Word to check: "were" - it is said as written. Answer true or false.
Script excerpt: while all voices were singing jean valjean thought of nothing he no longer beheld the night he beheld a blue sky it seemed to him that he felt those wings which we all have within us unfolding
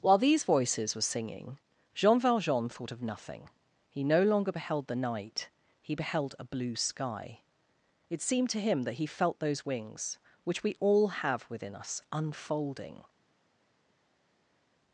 true